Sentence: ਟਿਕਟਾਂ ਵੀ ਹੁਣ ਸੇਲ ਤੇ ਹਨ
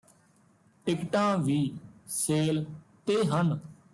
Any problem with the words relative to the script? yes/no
yes